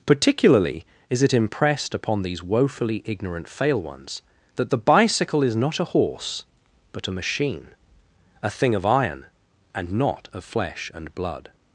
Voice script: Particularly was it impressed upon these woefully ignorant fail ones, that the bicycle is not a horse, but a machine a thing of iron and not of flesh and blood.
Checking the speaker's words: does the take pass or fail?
fail